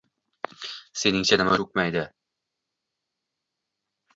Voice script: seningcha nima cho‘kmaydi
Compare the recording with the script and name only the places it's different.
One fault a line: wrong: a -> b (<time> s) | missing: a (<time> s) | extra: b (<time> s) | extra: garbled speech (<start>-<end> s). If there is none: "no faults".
no faults